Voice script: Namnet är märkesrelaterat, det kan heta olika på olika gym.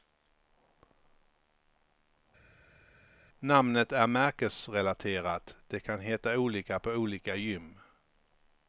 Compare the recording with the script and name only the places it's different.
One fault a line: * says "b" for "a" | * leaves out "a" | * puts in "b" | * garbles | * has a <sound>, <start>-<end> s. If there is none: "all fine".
all fine